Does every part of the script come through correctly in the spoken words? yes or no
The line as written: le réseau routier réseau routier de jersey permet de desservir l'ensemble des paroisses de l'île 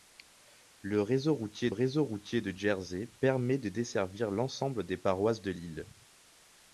yes